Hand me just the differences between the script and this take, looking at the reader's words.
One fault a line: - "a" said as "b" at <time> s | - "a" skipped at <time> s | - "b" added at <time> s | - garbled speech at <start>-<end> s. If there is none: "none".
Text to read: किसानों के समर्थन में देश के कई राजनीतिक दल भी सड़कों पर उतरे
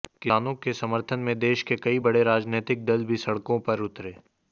- "बड़े" added at 2.0 s